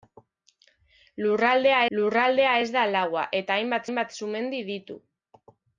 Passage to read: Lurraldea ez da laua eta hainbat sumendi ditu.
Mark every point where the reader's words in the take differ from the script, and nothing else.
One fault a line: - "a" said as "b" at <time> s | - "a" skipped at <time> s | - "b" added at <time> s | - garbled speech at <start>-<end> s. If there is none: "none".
- "lurraldea" added at 2.0 s
- "hainbat" added at 3.8 s